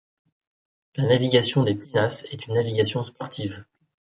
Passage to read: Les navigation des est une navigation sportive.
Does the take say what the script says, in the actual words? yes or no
no